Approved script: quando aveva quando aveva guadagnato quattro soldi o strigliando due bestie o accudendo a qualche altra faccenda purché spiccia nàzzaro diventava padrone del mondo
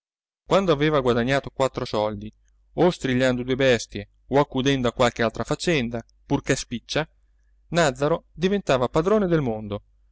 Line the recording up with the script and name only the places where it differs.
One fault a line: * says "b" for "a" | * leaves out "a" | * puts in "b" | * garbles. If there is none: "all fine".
* leaves out "quando aveva"